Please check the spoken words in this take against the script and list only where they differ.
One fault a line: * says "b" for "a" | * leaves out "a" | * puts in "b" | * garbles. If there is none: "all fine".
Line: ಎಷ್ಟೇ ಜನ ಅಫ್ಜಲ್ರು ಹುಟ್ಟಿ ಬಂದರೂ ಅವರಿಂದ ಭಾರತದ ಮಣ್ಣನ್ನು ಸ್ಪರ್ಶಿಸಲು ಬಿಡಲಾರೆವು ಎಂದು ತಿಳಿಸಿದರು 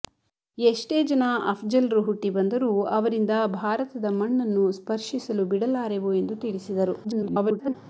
* garbles